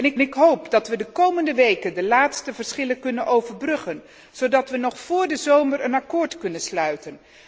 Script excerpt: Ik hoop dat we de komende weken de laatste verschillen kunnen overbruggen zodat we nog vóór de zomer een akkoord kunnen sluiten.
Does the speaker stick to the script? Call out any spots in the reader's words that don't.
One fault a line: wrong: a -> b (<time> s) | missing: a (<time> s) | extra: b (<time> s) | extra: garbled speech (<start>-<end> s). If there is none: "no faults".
extra: ik (0.2 s)